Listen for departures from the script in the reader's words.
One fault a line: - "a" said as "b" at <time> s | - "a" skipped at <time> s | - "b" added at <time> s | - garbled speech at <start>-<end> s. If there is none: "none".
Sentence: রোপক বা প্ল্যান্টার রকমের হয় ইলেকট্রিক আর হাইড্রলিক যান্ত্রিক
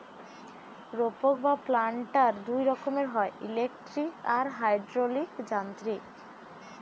- "দুই" added at 2.5 s